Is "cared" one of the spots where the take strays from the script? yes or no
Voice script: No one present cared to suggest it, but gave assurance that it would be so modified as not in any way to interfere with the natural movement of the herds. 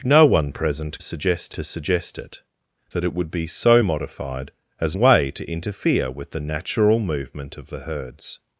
yes